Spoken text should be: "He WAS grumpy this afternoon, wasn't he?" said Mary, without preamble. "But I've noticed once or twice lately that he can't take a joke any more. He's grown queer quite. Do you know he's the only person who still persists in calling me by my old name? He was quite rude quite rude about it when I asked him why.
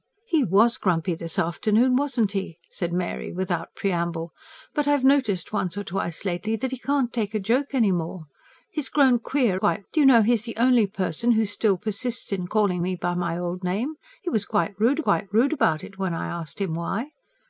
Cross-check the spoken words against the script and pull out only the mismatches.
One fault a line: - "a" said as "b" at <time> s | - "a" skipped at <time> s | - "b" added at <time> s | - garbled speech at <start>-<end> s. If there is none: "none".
none